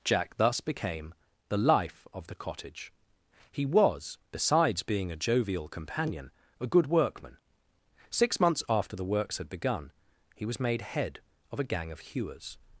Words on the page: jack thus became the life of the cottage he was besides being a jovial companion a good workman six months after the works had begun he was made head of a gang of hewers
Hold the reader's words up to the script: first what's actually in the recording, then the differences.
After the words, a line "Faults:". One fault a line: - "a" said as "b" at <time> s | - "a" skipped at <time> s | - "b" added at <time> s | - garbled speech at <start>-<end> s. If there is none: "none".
jack thus became the life of the cottage he was besides being a jovial companion a good workman six months after the works had begun he was made head of a gang of hewers
Faults:
none